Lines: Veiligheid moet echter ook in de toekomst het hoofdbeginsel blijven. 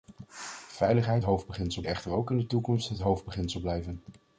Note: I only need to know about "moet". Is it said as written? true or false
false